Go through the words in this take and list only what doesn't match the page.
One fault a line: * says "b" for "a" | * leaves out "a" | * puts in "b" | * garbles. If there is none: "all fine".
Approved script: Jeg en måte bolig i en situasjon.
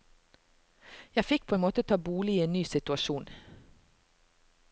* puts in "fikk på"
* puts in "ta"
* puts in "ny"